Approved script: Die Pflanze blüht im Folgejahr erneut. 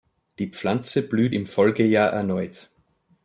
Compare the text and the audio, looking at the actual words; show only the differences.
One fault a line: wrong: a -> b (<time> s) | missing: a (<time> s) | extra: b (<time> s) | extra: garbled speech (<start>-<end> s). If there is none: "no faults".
no faults